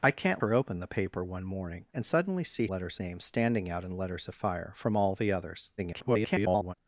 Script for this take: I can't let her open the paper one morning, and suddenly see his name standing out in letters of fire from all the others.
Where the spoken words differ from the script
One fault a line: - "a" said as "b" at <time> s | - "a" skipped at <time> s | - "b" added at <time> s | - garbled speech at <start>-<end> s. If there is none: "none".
- "let" skipped at 0.4 s
- "his" said as "letters" at 2.7 s
- garbled speech at 5.8-6.7 s